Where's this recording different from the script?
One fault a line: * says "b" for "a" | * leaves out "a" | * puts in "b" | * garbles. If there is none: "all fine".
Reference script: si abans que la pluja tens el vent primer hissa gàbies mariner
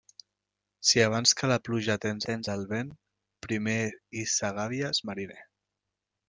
* puts in "tens"